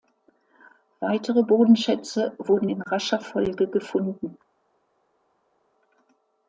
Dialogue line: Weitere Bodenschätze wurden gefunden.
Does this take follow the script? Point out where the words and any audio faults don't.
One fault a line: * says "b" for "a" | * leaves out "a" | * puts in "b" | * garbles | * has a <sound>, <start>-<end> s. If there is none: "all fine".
* puts in "in rascher Folge"